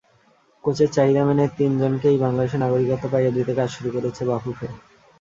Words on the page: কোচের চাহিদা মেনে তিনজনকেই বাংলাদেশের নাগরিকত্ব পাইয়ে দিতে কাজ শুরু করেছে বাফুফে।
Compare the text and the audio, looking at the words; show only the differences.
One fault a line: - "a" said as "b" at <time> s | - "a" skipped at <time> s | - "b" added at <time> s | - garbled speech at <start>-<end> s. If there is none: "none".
none